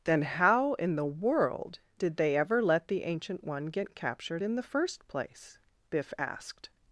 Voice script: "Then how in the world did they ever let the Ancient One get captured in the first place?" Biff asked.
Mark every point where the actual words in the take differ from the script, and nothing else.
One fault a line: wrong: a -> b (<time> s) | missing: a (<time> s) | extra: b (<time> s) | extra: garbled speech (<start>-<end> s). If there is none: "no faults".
no faults